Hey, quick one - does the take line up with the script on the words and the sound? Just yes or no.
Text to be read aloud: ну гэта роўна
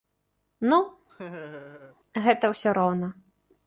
no